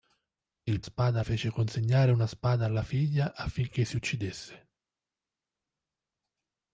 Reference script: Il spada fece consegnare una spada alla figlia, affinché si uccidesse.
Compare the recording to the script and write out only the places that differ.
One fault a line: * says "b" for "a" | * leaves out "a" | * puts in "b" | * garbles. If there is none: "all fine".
all fine